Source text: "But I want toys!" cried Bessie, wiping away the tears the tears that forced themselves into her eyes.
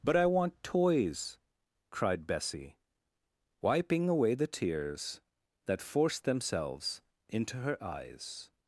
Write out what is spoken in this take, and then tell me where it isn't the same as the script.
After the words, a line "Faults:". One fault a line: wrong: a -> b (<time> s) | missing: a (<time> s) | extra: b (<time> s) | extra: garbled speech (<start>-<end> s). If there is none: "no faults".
"But I want toys!" cried Bessie, wiping away the tears that forced themselves into her eyes.
Faults:
missing: the tears (5.2 s)